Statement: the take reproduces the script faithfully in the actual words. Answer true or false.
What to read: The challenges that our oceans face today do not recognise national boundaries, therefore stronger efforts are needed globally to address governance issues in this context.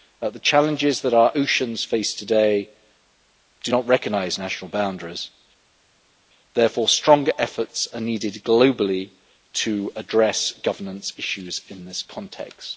true